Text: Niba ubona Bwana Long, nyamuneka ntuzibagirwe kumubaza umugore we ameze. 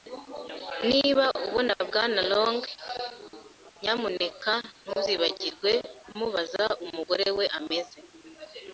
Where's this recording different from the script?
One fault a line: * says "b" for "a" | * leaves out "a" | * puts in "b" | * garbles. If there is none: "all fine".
all fine